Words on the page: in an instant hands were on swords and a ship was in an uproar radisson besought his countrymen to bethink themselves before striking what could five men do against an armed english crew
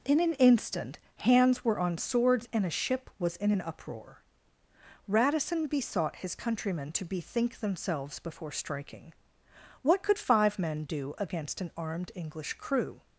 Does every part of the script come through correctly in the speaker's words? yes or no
yes